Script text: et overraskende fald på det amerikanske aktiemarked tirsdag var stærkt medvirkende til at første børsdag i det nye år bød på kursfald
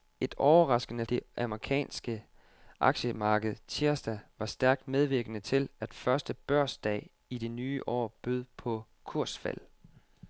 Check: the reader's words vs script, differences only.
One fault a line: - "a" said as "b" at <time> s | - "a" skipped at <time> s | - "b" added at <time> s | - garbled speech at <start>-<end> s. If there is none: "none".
- "fald på" skipped at 1.1 s